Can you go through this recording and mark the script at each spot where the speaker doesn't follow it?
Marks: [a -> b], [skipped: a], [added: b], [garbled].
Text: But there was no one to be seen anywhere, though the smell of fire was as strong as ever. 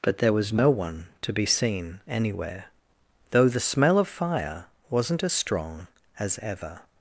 But there was no one to be seen anywhere, though the smell of fire [was -> wasn't] as strong as ever.